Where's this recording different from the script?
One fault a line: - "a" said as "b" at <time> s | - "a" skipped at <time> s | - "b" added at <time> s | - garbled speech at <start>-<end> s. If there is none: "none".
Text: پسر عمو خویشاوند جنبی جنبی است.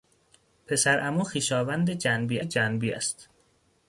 none